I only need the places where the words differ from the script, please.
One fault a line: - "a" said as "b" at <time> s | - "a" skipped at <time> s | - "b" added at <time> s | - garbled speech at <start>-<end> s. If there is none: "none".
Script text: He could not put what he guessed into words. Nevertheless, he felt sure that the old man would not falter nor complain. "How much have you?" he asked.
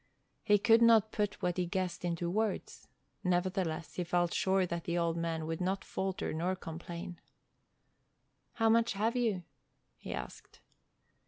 none